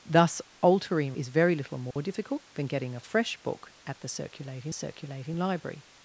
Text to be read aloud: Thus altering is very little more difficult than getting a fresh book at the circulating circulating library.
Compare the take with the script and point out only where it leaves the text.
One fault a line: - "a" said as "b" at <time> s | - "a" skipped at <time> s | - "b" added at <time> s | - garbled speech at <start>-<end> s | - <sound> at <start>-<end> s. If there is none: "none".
- dropout at 1.9-2.0 s